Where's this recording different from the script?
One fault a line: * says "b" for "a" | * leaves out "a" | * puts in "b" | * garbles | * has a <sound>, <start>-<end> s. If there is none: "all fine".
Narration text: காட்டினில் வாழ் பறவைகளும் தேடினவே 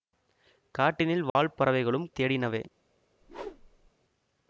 * has a dropout, 1.3-1.4 s
* has a whoosh, 3.2-3.9 s